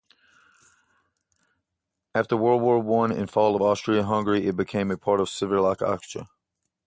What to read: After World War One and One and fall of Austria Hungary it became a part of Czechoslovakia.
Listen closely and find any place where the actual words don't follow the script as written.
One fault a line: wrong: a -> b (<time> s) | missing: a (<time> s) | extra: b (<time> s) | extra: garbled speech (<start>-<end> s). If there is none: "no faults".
missing: One and (3.3 s)